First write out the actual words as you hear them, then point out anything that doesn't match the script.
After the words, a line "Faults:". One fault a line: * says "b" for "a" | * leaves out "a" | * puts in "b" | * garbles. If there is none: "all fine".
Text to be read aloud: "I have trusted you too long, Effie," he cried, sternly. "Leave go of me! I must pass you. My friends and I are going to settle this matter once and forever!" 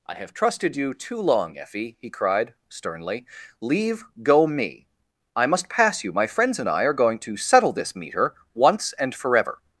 "I have trusted you too long, Effie," he cried, sternly. "Leave go me! I must pass you. My friends and I are going to settle this meter once and forever!"
Faults:
* leaves out "of"
* says "meter" for "matter"